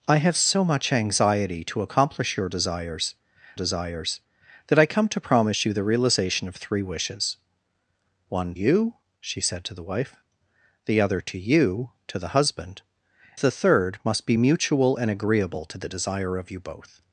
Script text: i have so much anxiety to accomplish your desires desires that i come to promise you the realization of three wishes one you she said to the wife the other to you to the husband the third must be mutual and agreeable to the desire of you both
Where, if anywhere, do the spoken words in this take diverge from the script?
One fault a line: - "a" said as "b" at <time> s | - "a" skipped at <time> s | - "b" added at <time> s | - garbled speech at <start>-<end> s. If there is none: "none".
none